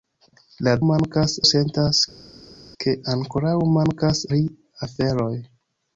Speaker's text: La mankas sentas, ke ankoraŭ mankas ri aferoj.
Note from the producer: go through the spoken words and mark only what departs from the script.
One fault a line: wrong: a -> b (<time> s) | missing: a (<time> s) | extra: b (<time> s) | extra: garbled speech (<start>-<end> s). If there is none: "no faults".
no faults